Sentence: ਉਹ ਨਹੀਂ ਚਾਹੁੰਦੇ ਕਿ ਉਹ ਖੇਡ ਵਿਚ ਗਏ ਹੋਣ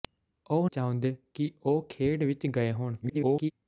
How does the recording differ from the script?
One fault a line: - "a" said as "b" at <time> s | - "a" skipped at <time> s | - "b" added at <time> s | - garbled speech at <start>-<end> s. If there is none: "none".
- "ਨਹੀਂ" skipped at 0.7 s
- garbled speech at 3.0-3.5 s